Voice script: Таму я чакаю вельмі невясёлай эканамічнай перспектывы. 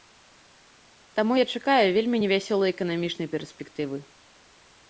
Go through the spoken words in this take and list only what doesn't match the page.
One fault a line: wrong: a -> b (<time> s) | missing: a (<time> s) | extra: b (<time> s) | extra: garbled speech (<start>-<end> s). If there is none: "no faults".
no faults